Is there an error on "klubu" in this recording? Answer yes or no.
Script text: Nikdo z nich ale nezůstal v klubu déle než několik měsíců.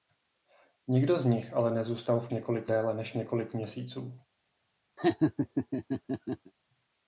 yes